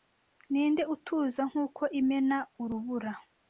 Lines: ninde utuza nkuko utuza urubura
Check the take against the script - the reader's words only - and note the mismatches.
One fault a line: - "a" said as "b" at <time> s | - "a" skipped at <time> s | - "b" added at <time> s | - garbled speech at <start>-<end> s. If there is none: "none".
- "utuza" said as "imena" at 2.0 s